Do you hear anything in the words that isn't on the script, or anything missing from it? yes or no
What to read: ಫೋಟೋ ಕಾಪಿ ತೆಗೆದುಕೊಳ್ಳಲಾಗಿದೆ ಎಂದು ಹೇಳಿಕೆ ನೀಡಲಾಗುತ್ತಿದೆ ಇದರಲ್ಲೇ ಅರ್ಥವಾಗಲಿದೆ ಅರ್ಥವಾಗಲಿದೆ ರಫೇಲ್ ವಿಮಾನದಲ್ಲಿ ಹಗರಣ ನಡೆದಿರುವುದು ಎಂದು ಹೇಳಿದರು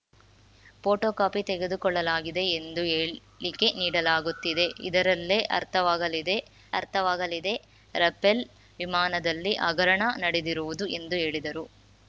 no